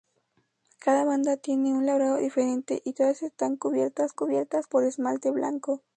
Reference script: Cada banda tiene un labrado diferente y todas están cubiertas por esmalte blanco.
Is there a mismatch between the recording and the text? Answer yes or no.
yes